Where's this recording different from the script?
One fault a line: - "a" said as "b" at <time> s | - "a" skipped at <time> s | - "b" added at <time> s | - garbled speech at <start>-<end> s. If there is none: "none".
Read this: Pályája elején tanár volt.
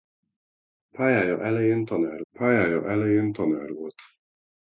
- "pályája elején tanár" added at 2.3 s